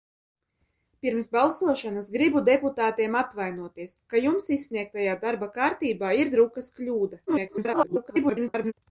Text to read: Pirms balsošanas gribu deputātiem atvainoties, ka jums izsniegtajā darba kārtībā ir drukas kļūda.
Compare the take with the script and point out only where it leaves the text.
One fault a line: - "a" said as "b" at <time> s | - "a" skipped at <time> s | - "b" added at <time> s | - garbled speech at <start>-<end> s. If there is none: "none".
- garbled speech at 7.3-8.7 s